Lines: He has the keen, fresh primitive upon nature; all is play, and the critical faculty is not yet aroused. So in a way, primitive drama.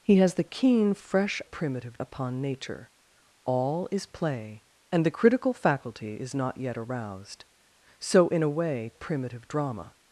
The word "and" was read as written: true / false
true